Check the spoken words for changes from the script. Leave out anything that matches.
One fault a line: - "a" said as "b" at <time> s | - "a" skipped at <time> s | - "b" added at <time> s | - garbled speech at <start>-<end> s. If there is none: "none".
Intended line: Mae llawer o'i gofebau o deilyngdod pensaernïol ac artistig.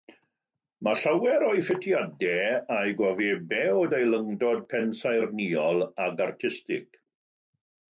- "ffitiadau a'i" added at 1.7 s